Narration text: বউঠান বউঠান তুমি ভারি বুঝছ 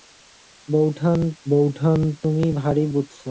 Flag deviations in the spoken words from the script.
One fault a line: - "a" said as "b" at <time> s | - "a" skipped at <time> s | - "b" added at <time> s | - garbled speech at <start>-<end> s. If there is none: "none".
none